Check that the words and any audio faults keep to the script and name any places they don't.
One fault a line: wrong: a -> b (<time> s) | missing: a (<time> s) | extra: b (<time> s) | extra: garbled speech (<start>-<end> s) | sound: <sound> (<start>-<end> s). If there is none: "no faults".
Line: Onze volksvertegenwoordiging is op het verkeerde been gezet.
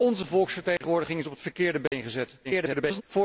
sound: dropout (0.8-0.8 s)
sound: dropout (1.9-1.9 s)
extra: garbled speech (2.4-3.0 s)